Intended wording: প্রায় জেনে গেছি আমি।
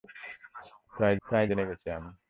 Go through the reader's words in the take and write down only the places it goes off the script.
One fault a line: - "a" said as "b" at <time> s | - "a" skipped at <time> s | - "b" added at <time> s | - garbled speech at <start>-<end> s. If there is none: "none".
- "প্রায়" added at 1.3 s